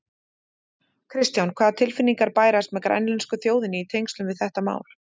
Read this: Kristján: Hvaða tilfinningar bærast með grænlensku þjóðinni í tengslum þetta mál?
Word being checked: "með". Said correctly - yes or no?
yes